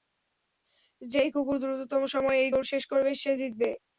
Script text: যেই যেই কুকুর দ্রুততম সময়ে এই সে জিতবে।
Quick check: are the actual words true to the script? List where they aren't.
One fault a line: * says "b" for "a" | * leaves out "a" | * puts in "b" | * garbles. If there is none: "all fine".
* leaves out "যেই"
* puts in "দৌড় শেষ করবে"